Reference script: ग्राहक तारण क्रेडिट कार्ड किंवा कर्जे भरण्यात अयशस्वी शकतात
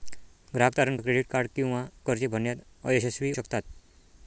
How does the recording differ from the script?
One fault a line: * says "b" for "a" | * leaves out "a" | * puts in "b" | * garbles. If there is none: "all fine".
all fine